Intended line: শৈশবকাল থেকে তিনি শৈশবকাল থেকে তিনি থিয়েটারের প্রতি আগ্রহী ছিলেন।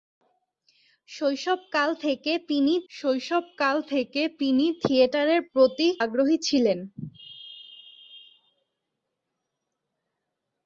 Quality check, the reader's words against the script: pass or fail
pass